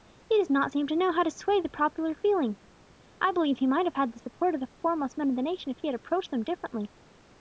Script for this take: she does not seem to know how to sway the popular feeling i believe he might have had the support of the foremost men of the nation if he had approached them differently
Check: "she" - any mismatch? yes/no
yes